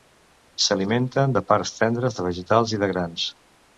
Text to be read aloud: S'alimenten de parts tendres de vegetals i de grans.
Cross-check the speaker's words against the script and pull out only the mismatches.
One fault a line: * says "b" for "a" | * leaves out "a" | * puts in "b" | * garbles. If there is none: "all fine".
all fine